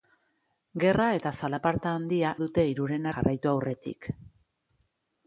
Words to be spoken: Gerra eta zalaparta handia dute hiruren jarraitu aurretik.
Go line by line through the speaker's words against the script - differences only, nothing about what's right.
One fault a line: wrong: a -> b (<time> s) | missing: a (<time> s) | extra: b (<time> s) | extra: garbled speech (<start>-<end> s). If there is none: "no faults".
no faults